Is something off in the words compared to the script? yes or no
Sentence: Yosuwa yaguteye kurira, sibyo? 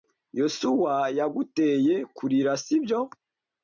no